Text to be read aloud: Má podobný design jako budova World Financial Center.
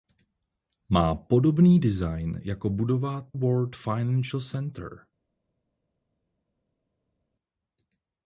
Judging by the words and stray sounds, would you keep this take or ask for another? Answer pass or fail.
pass